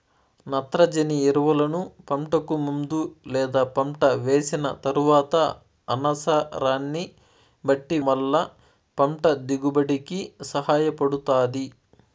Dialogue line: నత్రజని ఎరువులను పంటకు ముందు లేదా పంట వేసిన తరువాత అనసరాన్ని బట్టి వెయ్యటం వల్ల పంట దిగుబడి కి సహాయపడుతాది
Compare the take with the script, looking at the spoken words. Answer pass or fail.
fail